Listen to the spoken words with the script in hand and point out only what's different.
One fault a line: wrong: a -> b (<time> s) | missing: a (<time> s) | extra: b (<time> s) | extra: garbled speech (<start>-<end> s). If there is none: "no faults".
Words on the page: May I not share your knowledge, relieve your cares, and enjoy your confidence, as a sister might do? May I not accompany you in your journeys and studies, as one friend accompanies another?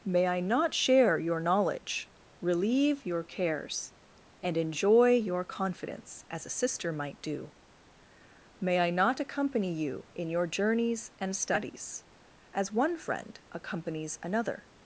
no faults